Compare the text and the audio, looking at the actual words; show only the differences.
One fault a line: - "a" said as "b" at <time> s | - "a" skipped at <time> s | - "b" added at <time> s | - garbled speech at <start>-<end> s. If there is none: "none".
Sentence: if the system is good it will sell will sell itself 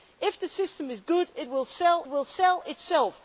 none